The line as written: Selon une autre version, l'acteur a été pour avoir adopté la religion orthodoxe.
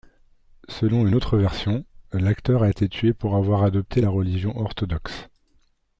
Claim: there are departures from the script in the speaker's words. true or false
true